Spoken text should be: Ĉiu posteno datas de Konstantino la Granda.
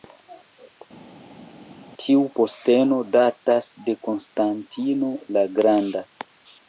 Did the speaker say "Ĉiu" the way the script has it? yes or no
no